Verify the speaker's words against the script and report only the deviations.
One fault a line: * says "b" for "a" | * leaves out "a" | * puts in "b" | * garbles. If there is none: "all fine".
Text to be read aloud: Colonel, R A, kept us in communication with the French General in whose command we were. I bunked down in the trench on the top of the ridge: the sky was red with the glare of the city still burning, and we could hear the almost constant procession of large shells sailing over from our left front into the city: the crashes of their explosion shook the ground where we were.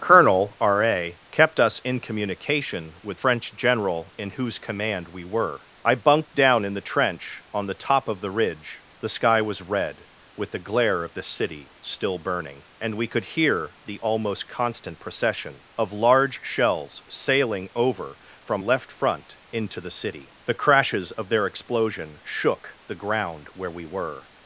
* leaves out "the"
* leaves out "our"